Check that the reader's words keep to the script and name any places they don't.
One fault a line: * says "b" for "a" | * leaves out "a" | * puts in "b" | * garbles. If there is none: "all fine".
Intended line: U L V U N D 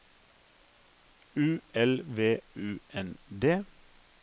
all fine